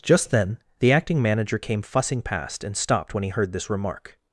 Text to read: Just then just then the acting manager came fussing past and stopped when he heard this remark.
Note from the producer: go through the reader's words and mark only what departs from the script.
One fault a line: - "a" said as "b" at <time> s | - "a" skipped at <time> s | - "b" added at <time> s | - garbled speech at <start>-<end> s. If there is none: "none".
- "just then" skipped at 0.6 s